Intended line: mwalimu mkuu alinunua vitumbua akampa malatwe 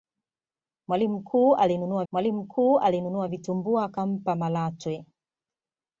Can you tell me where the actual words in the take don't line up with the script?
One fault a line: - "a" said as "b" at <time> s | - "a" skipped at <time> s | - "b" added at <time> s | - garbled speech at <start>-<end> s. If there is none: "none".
- "mwalimu mkuu alinunua" added at 2.1 s